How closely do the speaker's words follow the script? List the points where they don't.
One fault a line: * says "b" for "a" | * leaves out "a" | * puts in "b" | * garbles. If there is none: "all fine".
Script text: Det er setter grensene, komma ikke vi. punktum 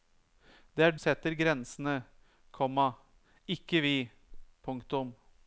all fine